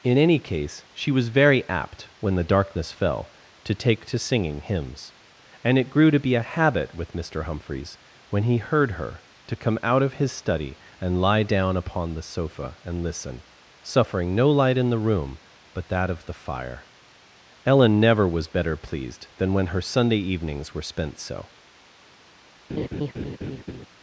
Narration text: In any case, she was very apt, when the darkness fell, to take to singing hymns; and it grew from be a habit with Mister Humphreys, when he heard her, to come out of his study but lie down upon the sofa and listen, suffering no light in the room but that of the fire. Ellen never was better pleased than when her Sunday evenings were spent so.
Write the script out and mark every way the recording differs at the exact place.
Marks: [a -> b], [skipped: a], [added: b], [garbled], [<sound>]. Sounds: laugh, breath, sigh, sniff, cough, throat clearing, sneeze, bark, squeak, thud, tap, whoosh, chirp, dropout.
In any case, she was very apt, when the darkness fell, to take to singing hymns; and it grew [from -> to] be a habit with Mister Humphreys, when he heard her, to come out of his study [but -> and] lie down upon the sofa and listen, suffering no light in the room but that of the fire. Ellen never was better pleased than when her Sunday evenings were spent so. [laugh]